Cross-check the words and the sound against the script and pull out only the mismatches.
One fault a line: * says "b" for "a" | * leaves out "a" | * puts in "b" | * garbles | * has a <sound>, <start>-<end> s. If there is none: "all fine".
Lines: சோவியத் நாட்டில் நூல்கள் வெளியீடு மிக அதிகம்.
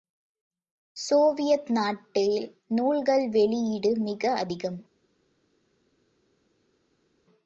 all fine